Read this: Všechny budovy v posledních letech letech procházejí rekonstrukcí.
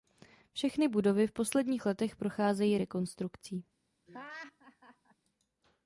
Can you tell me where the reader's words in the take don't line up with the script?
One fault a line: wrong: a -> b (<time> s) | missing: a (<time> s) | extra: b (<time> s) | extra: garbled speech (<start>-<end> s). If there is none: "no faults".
missing: letech (2.2 s)